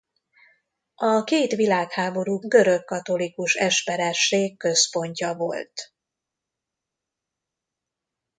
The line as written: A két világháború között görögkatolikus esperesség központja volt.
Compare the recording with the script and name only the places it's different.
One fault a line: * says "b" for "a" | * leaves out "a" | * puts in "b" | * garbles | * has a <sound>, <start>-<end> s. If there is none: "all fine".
* leaves out "között"